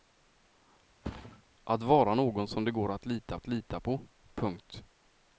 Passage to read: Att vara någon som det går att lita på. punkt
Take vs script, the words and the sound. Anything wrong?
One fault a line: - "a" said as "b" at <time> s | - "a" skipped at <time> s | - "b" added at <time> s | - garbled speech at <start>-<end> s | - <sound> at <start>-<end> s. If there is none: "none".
- thud at 1.0-1.4 s
- "att lita" added at 3.3 s